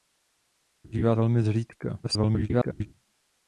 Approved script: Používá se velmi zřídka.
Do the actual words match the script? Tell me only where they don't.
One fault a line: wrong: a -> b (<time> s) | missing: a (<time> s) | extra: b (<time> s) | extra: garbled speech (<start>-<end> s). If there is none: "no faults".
missing: se (1.1 s)
extra: garbled speech (2.0-2.9 s)